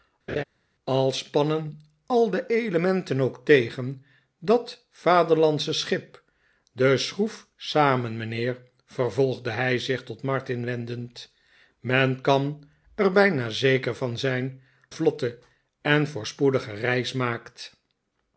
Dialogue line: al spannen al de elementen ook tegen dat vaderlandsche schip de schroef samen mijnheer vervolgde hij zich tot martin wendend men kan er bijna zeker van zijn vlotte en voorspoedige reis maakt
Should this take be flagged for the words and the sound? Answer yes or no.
yes